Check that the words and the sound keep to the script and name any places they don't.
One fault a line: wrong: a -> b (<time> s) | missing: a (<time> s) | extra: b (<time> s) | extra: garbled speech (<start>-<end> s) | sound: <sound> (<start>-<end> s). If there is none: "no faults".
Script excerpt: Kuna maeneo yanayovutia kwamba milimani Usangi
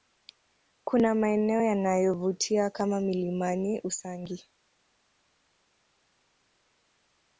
wrong: kwamba -> kama (2.7 s)